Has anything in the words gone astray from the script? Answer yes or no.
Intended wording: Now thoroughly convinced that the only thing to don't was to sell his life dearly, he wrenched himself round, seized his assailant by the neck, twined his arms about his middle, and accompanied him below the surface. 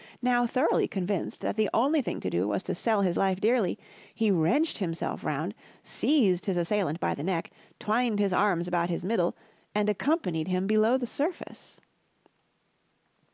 yes